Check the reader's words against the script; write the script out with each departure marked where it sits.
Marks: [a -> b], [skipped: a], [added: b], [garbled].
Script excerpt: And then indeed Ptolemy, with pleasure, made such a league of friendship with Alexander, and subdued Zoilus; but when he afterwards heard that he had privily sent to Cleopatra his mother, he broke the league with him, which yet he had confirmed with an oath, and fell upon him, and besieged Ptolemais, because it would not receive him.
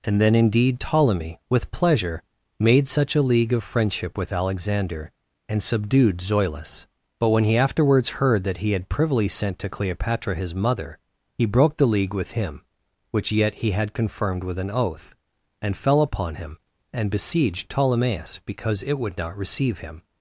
And then indeed Ptolemy, with pleasure, made such a league of friendship with Alexander, and subdued Zoilus; but when he afterwards heard that he had privily sent to Cleopatra his mother, he broke the league with him, which yet he had confirmed with an oath, and fell upon him, and besieged Ptolemais, because it would not receive him.